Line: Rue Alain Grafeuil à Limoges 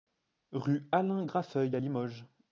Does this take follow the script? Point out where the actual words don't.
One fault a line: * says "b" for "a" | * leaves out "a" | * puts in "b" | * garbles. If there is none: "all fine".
all fine